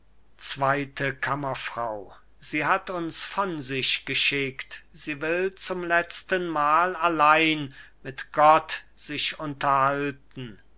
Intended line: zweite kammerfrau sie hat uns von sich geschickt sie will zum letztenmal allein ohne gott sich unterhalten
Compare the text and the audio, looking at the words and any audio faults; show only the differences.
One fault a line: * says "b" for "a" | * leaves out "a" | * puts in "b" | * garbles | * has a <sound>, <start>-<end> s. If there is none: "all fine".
* says "mit" for "ohne"